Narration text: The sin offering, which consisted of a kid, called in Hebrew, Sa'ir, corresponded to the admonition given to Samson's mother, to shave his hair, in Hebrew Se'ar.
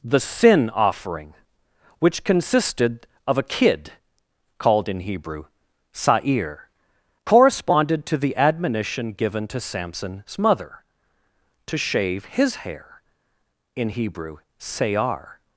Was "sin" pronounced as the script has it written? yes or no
yes